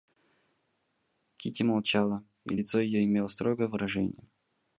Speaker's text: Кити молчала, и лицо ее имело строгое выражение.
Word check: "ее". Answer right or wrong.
right